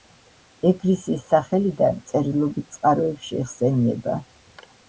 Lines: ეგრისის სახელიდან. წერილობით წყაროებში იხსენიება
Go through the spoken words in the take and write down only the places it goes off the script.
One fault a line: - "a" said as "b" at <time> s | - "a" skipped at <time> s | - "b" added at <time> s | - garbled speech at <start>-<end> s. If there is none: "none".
none